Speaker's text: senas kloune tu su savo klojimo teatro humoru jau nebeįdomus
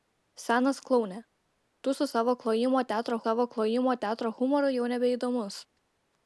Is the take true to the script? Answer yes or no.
no